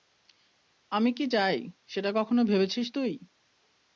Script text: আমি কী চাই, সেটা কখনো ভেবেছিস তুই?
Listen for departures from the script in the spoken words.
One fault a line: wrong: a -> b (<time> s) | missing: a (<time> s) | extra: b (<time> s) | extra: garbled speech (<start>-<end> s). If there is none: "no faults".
no faults